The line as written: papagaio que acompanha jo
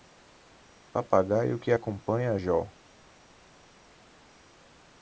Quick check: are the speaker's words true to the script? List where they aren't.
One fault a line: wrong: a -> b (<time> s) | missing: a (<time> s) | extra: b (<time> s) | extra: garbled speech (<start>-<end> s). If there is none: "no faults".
no faults